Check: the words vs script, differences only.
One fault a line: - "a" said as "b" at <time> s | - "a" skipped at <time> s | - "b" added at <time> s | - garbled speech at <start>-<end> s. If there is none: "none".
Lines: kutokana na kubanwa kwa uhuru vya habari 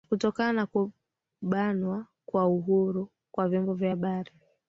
- "kwa vyombo" added at 3.3 s